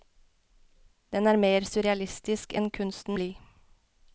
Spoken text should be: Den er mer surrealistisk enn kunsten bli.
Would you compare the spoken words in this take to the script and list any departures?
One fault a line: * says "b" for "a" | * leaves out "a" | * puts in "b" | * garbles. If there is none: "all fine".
all fine